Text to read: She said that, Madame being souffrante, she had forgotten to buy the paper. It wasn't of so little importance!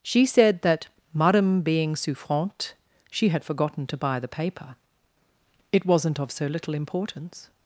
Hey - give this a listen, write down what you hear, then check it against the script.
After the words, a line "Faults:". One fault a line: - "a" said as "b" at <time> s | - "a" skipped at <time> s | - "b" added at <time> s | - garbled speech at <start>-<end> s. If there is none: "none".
She said that, Madame being souffrante, she had forgotten to buy the paper. It wasn't of so little importance!
Faults:
none